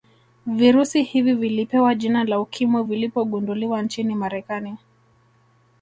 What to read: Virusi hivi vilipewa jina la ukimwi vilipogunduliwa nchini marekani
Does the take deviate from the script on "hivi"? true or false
false